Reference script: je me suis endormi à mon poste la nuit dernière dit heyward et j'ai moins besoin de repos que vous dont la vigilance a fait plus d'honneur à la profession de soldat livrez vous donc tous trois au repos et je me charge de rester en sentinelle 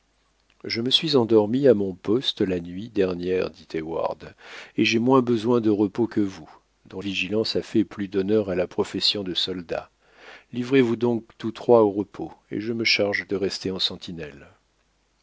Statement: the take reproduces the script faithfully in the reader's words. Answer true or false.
false